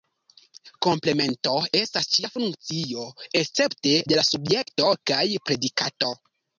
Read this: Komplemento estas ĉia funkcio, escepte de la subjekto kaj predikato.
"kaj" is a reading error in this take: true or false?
false